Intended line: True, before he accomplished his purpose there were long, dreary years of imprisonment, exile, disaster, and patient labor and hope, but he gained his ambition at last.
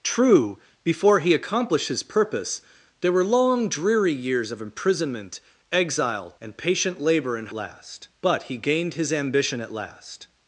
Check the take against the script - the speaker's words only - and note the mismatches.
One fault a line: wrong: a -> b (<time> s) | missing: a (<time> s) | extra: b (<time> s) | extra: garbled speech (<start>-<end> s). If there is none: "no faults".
missing: disaster (6.3 s)
wrong: hope -> last (7.5 s)